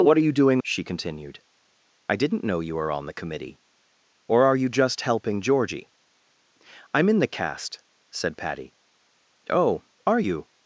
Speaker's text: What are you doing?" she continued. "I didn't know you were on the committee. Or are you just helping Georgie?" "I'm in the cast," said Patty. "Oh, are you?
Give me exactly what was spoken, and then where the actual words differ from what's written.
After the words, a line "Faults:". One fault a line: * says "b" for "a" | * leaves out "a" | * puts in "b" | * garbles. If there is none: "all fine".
What are you doing?" she continued. "I didn't know you were on the committee. Or are you just helping Georgie?" "I'm in the cast," said Patty. "Oh, are you?
Faults:
all fine